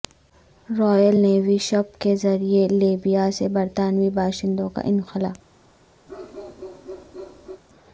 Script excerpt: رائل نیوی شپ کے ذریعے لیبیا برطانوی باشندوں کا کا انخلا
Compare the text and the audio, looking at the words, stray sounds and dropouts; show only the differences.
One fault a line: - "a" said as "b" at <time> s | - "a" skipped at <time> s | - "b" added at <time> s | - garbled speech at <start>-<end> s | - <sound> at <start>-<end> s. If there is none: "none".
- "سے" added at 3.4 s
- "کا" skipped at 4.8 s
- bark at 6.1-7.6 s